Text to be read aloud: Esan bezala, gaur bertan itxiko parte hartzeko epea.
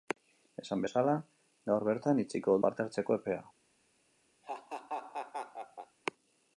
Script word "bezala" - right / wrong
right